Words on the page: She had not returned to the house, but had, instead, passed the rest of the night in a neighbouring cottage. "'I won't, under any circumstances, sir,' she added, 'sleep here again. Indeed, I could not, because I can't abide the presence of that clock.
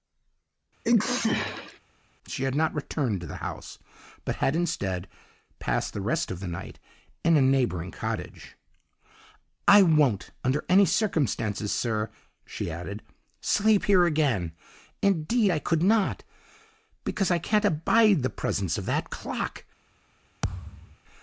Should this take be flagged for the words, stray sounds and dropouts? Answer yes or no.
yes